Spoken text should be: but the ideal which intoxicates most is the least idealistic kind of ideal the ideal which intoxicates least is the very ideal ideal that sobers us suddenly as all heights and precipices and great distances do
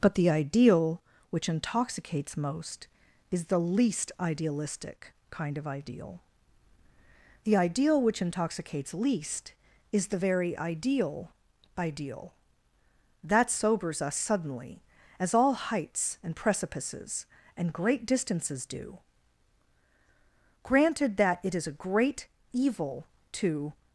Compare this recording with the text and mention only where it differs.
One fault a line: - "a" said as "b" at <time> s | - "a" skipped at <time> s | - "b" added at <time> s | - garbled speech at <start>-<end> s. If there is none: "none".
- "granted that it is a great evil to" added at 20.6 s